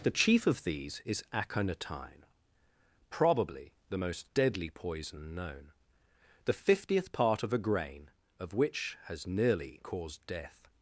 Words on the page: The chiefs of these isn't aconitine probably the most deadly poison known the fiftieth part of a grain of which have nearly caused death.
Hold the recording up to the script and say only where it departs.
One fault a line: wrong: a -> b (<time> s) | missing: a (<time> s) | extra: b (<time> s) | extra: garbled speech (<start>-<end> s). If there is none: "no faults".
wrong: chiefs -> chief (0.1 s)
wrong: isn't -> is (1.1 s)
wrong: have -> has (9.0 s)